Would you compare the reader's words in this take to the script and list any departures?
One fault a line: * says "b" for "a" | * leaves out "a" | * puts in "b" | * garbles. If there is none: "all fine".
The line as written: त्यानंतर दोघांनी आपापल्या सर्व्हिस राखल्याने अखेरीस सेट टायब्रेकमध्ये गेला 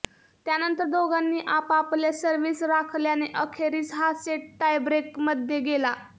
* puts in "हा"